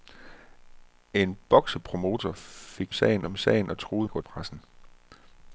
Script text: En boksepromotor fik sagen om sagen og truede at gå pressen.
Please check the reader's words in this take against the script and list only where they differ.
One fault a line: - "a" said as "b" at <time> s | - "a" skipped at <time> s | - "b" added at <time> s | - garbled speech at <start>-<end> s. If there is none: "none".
none